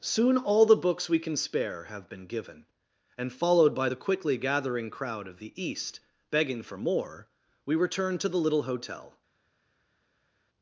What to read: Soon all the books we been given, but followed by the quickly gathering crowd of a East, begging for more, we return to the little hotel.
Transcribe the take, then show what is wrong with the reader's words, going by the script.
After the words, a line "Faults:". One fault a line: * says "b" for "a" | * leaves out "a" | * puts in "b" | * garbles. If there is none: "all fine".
Soon all the books we can spare have been given, and followed by the quickly gathering crowd of the East, begging for more, we return to the little hotel.
Faults:
* puts in "can spare have"
* says "and" for "but"
* says "the" for "a"